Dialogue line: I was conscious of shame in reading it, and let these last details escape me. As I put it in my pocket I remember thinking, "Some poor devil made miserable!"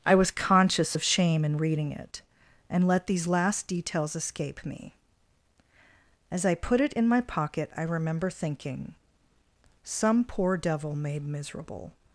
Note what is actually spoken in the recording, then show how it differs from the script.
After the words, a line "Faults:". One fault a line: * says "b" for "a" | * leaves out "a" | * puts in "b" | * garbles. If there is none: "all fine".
I was conscious of shame in reading it, and let these last details escape me. As I put it in my pocket I remember thinking, "Some poor devil made miserable!"
Faults:
all fine